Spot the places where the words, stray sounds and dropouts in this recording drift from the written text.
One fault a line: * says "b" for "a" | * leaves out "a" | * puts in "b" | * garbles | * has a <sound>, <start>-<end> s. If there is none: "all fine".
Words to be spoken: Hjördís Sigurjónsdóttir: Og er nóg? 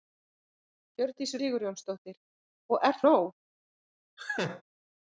* has a laugh, 4.2-4.6 s